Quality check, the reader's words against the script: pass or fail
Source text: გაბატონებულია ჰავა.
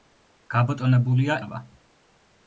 pass